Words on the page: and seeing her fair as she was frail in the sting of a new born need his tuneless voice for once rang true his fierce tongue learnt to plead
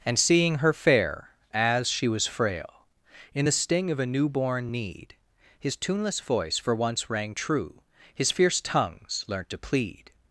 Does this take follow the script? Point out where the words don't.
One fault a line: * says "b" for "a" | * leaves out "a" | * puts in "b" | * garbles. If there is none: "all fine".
* says "tongues" for "tongue"